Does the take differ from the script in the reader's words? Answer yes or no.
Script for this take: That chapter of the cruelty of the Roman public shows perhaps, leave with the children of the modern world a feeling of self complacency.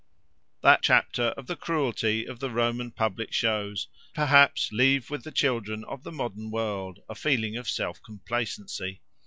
no